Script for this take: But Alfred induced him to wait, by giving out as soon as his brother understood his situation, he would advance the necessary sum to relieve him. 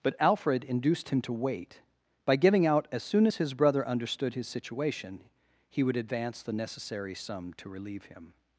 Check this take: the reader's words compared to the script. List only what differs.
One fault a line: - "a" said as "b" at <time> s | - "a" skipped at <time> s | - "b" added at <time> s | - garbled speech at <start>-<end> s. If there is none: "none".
none